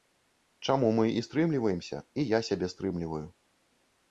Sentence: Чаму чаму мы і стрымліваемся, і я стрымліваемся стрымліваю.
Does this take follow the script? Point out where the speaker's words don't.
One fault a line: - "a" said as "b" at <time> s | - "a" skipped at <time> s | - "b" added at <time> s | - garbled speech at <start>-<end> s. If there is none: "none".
- "чаму" skipped at 0.9 s
- "стрымліваемся" said as "сябе" at 2.5 s